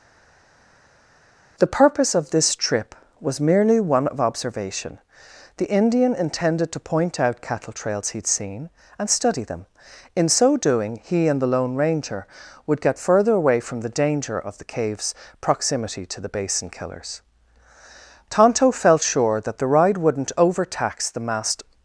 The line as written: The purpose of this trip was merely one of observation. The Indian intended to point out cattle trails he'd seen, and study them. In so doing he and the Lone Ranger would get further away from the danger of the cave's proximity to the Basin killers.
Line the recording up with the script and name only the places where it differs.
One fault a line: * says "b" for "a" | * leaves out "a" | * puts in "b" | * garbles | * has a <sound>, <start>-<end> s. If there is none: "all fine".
* puts in "Tonto felt sure that the ride wouldn't overtax the masked"